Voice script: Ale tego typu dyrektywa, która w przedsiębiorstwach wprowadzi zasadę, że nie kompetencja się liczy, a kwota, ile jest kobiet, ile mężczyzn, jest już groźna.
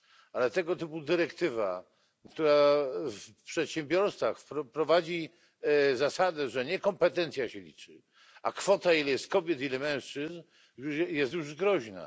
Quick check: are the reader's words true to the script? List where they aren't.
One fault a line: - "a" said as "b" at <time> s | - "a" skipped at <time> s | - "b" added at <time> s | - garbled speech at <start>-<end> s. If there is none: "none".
none